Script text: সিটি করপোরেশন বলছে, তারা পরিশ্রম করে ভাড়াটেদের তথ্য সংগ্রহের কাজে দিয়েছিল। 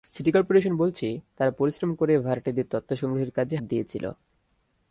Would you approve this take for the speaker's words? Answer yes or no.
yes